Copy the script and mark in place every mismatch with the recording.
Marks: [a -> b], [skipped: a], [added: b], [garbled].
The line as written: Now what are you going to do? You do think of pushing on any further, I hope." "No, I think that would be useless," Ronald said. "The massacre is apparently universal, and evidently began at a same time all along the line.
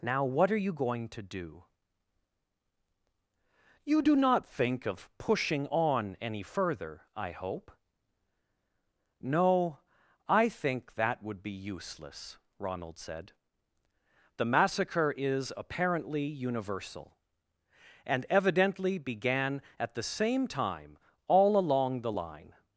Now what are you going to do? You do [added: not] think of pushing on any further, I hope." "No, I think that would be useless," Ronald said. "The massacre is apparently universal, and evidently began at [a -> the] same time all along the line.